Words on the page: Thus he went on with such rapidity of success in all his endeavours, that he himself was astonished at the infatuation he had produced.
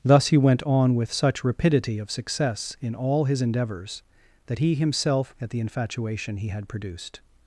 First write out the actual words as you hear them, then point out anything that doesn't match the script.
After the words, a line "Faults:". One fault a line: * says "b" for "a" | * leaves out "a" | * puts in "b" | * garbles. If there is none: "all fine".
Thus he went on with such rapidity of success in all his endeavours, that he himself at the infatuation he had produced.
Faults:
* leaves out "was astonished"